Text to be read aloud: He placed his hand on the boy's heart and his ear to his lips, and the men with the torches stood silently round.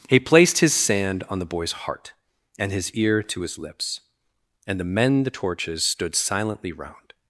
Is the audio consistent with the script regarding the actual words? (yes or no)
no